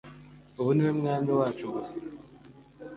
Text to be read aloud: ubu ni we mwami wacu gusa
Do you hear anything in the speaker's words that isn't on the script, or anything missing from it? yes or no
no